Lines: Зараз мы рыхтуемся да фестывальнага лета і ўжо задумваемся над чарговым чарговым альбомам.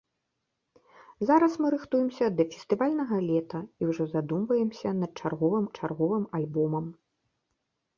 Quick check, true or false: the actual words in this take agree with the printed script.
true